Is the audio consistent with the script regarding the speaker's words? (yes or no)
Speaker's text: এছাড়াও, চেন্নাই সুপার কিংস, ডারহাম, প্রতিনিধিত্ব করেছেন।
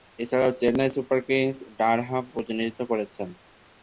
yes